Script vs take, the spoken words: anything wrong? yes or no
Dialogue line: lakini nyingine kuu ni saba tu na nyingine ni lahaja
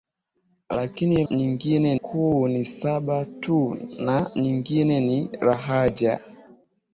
no